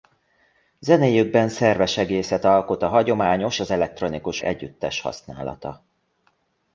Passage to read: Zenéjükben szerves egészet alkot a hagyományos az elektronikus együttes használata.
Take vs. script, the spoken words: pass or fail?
pass